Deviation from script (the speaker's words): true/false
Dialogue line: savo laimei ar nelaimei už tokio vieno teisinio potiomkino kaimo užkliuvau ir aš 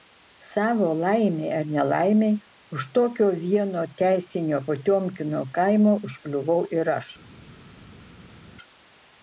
false